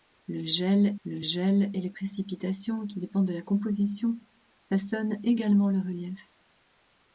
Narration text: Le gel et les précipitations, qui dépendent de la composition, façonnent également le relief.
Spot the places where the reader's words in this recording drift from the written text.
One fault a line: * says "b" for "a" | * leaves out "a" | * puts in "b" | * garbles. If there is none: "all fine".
* puts in "le gel"